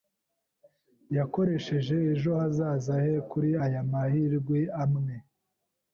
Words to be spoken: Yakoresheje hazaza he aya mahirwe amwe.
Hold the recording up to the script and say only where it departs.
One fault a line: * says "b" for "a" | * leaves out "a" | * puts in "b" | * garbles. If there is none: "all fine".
* puts in "ejo"
* puts in "kuri"